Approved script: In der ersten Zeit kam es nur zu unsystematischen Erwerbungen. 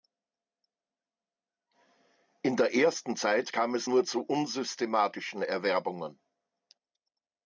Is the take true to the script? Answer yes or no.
yes